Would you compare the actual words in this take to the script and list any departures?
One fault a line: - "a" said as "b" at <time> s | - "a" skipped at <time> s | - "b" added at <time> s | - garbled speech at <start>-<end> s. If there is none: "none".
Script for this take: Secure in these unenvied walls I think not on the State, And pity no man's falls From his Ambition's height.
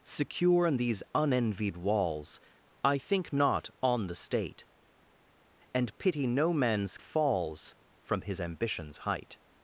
none